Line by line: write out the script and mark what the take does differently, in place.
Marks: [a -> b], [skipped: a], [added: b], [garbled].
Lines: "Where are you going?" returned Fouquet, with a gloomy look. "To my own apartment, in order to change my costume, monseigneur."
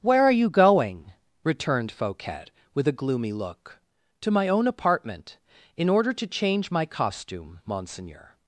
"Where are you going?" returned Fouquet, with a gloomy look. "To my own apartment, in order to change my costume, monseigneur."